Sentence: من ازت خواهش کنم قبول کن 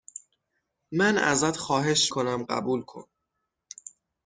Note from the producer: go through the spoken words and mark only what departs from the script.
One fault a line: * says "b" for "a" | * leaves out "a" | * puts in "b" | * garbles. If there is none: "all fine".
all fine